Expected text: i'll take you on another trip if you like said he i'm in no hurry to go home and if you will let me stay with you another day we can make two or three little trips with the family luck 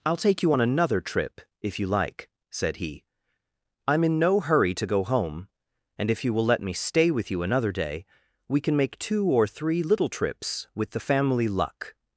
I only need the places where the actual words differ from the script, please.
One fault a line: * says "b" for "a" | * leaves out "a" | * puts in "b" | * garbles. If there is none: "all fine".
all fine